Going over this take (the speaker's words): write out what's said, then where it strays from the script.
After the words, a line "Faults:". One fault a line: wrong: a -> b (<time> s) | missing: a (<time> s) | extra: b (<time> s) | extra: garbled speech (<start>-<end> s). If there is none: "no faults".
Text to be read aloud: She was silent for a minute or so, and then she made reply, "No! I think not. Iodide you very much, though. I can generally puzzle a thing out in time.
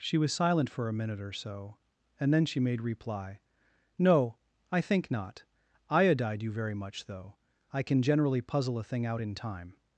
She was silent for a minute or so, and then she made reply, "No! I think not. Iodide you very much, though. I can generally puzzle a thing out in time.
Faults:
no faults